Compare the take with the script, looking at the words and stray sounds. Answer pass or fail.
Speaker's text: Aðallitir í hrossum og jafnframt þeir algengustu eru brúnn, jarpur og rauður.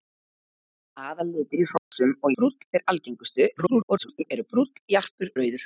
fail